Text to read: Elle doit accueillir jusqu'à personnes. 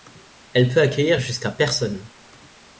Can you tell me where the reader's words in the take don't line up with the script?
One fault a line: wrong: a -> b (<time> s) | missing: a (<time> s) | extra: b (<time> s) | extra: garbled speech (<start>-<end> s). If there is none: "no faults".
wrong: doit -> peut (0.7 s)